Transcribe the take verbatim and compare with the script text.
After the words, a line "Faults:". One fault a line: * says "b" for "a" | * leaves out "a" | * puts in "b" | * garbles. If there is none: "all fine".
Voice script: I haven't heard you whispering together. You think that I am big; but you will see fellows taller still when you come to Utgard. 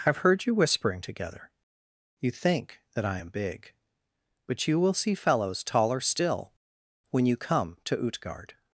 I have heard you whispering together. You think that I am big; but you will see fellows taller still when you come to Utgard.
Faults:
* says "have" for "haven't"